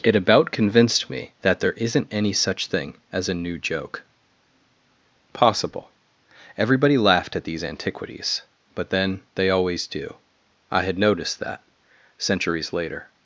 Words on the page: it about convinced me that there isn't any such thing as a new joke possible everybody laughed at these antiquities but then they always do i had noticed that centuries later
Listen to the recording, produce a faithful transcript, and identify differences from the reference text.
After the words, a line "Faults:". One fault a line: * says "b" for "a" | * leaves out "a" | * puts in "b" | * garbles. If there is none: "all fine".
it about convinced me that there isn't any such thing as a new joke possible everybody laughed at these antiquities but then they always do i had noticed that centuries later
Faults:
all fine